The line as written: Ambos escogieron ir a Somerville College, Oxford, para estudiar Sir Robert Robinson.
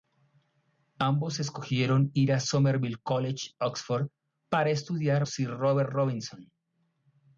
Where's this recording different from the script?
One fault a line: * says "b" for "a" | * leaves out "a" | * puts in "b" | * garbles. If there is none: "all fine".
all fine